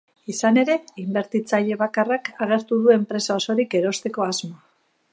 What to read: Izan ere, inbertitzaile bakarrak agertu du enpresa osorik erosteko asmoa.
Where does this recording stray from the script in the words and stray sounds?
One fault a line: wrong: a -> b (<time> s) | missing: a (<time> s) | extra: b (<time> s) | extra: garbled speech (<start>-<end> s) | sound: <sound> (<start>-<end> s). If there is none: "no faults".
no faults